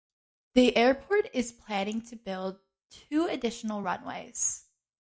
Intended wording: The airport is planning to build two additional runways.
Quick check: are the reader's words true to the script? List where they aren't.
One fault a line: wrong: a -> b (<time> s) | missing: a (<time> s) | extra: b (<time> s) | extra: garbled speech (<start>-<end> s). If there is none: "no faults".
no faults